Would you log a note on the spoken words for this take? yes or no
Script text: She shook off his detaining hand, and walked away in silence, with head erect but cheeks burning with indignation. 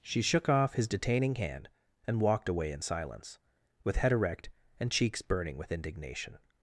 yes